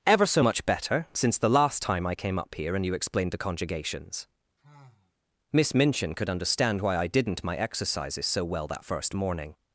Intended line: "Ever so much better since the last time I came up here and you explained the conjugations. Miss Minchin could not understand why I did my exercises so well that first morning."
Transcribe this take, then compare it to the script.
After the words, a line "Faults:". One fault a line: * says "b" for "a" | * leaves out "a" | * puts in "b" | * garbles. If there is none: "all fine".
"Ever so much better since the last time I came up here and you explained the conjugations. Miss Minchin could understand why I didn't my exercises so well that first morning."
Faults:
* leaves out "not"
* says "didn't" for "did"